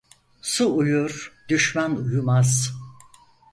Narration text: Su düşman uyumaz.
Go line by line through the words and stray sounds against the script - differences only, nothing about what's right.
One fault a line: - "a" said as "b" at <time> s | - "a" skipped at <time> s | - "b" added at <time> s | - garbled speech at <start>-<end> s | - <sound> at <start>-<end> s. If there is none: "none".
- "uyur" added at 0.8 s